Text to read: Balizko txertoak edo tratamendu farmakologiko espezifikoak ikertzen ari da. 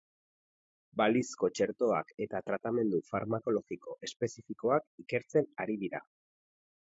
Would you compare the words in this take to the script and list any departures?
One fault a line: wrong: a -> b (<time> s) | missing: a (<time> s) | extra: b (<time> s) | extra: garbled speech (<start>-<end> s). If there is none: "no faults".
wrong: edo -> eta (2.2 s)
wrong: da -> dira (5.9 s)